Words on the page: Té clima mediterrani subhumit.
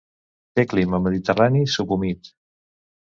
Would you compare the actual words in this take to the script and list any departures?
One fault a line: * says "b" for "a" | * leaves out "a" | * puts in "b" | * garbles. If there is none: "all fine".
all fine